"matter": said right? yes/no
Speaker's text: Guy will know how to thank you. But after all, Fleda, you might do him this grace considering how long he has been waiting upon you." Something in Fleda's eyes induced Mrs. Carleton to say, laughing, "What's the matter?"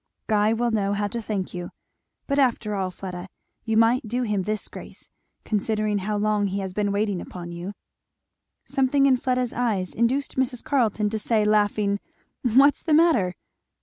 yes